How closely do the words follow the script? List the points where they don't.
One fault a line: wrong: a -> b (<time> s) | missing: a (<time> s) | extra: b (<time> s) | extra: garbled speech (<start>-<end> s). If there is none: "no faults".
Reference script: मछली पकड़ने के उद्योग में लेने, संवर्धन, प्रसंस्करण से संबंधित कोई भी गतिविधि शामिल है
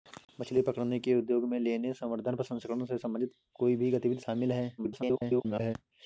extra: garbled speech (4.8-5.8 s)